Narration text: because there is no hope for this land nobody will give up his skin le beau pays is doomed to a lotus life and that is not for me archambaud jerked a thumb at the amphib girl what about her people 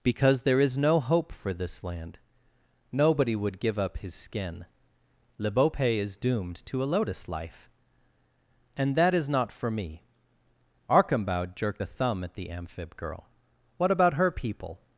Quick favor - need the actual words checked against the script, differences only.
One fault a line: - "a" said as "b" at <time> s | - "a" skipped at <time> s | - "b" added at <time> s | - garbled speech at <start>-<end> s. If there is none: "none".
- "will" said as "would" at 3.4 s